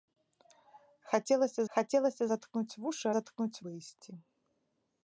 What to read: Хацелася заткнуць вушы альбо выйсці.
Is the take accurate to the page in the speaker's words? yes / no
no